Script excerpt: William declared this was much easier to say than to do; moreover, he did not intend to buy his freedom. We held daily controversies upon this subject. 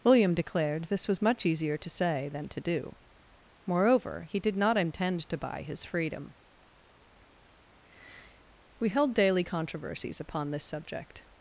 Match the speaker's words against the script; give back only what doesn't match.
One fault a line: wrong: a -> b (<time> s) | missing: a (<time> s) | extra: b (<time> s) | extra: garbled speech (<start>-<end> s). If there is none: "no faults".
no faults